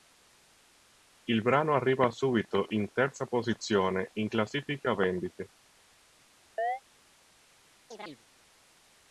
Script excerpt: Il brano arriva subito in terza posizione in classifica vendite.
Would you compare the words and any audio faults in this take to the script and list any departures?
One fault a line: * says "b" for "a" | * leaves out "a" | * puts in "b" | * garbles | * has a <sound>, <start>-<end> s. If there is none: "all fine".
* has a chirp, 6.6-6.8 s
* has a chirp, 7.9-8.2 s